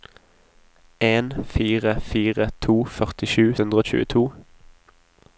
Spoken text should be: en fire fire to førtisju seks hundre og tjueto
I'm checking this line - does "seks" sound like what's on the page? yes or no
no